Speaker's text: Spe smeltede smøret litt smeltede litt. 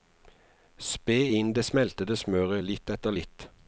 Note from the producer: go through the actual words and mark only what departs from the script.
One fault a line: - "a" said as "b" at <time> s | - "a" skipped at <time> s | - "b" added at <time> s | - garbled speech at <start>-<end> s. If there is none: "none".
- "inn det" added at 1.4 s
- "smeltede" said as "etter" at 2.9 s